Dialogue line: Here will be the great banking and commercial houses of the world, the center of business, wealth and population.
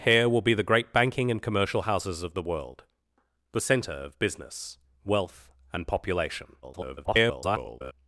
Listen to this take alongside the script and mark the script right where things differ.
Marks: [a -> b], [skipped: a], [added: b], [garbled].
Here will be the great banking and commercial houses of the world, the center of business, wealth and population. [garbled]